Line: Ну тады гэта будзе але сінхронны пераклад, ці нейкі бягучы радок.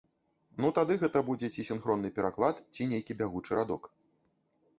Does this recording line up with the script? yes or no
no